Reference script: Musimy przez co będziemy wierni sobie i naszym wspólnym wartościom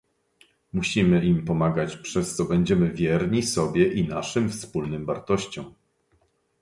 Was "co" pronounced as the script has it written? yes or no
yes